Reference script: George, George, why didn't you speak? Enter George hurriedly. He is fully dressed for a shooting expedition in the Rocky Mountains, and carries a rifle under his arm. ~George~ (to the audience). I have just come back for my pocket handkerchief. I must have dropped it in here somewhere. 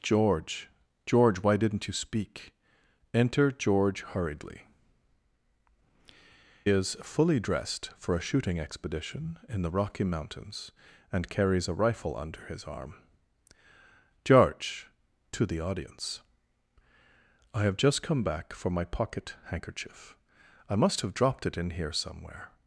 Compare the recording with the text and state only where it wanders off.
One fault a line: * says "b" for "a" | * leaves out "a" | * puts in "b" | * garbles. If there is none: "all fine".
* leaves out "He"